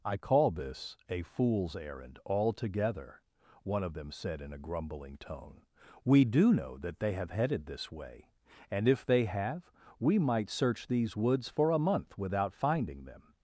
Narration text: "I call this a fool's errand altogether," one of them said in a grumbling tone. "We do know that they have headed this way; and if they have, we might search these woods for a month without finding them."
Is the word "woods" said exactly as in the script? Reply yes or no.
yes